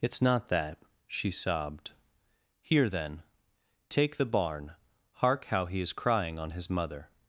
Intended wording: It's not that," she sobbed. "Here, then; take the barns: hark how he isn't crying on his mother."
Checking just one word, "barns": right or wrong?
wrong